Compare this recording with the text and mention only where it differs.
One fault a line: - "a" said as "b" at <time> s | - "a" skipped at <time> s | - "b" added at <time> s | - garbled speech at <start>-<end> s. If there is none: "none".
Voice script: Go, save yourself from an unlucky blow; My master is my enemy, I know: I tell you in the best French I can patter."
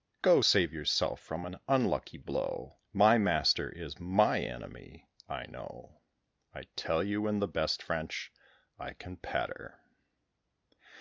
none